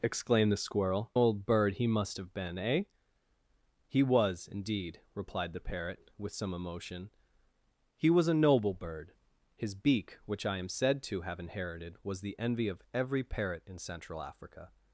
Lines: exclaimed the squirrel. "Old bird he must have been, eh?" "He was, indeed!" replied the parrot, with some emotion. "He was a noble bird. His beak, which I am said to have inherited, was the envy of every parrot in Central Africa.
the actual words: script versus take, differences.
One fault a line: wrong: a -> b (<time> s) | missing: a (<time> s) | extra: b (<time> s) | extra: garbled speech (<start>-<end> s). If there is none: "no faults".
no faults